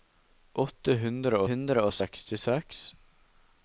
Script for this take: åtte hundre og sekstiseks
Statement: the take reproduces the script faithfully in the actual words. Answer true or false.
false